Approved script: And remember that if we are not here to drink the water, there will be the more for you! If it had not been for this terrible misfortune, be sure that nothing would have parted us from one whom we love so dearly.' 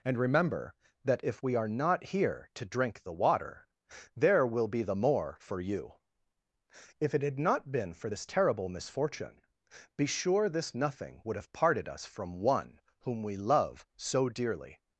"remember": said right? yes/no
yes